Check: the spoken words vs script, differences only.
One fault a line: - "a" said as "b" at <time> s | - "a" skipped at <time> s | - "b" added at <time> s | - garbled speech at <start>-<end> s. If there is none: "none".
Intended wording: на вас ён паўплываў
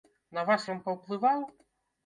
none